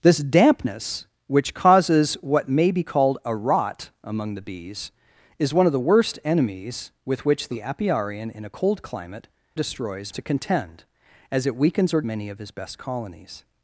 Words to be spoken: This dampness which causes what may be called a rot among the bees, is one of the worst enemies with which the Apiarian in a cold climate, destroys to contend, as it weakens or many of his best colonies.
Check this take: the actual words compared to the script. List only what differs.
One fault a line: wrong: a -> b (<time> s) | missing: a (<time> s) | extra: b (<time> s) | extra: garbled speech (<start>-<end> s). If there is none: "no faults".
no faults